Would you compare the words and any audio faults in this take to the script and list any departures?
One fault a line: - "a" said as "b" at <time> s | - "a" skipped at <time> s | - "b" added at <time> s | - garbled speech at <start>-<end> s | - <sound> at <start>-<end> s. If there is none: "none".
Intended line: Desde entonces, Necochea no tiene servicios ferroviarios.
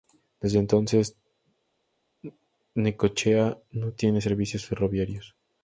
none